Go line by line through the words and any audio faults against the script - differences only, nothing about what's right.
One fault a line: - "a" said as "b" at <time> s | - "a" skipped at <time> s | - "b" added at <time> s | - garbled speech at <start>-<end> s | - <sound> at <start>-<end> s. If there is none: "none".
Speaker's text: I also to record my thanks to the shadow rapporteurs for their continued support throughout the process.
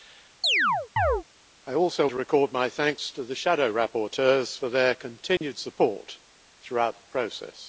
- chirp at 0.4-1.2 s
- dropout at 5.4-5.4 s